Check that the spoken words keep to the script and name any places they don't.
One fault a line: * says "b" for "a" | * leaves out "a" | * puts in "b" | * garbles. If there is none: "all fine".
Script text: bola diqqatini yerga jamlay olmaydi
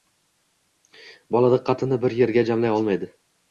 * puts in "bir"